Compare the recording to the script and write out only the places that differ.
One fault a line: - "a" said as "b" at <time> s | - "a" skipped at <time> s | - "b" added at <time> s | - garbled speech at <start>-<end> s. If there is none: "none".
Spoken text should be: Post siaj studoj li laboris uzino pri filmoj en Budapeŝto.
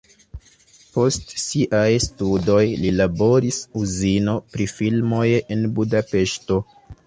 none